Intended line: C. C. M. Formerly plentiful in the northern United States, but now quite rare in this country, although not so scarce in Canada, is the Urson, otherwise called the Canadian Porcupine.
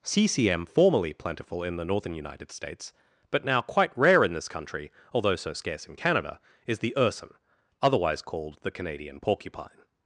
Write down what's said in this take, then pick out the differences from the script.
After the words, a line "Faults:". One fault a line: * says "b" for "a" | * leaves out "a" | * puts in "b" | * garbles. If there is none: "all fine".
C. C. M. Formerly plentiful in the northern United States, but now quite rare in this country, although so scarce in Canada, is the Urson, otherwise called the Canadian Porcupine.
Faults:
* leaves out "not"